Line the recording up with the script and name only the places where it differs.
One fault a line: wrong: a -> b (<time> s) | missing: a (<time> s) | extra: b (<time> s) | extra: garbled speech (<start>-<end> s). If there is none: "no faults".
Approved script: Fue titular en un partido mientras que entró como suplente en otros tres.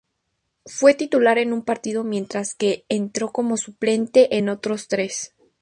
no faults